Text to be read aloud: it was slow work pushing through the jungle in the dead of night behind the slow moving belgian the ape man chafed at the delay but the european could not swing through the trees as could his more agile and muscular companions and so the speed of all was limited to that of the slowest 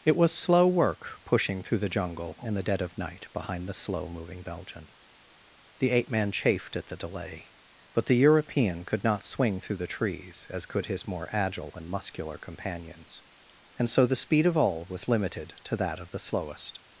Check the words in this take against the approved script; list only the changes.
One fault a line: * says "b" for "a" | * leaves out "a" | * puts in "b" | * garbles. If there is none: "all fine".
all fine